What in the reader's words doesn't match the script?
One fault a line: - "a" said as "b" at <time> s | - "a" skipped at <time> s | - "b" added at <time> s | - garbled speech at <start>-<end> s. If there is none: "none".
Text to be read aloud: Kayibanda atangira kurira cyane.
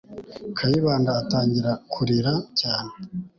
none